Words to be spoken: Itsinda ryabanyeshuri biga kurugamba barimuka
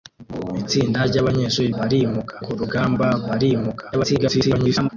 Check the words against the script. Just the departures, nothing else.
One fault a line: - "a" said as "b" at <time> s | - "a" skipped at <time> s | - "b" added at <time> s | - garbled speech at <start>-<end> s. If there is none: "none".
- "biga" said as "barimuka" at 1.8 s
- garbled speech at 3.9-4.9 s